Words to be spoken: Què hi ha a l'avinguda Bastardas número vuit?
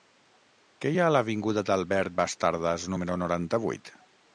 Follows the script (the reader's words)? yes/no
no